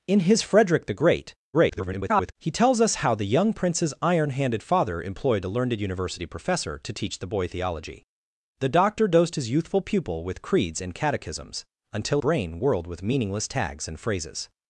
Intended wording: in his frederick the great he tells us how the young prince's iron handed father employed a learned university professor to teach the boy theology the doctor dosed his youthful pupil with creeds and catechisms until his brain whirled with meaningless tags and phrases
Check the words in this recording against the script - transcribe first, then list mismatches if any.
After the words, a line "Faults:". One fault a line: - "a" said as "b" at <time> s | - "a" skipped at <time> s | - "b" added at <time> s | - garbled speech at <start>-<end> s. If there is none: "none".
in his frederick the great [garbled] he tells us how the young prince's iron handed father employed a learned university professor to teach the boy theology the doctor dosed his youthful pupil with creeds and catechisms until brain whirled with meaningless tags and phrases
Faults:
- garbled speech at 1.5-2.3 s
- "his" skipped at 12.2 s